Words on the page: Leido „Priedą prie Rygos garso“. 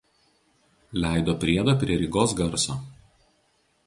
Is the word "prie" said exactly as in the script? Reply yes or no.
yes